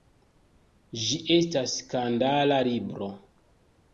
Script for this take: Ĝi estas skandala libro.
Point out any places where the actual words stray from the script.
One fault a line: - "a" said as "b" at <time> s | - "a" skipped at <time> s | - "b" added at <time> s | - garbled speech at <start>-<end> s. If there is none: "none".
none